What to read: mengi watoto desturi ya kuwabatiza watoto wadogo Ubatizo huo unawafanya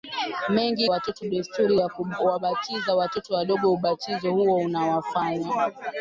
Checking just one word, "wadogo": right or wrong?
right